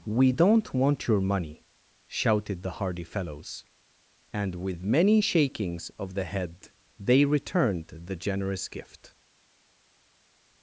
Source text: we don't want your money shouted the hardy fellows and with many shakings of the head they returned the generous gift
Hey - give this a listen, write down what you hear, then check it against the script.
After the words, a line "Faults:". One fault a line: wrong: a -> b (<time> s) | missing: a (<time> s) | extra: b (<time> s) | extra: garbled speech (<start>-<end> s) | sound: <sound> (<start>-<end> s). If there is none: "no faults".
we don't want your money shouted the hardy fellows and with many shakings of the head they returned the generous gift
Faults:
no faults